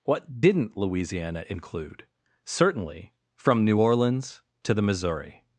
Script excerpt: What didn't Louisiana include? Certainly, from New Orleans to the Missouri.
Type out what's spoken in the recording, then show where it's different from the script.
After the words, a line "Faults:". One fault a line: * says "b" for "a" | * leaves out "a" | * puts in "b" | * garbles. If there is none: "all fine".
What didn't Louisiana include? Certainly, from New Orleans to the Missouri.
Faults:
all fine